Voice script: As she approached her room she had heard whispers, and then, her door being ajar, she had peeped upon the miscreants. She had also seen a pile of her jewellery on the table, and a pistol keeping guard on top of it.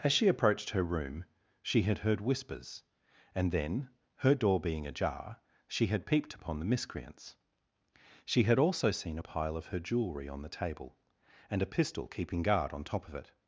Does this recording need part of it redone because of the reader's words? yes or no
no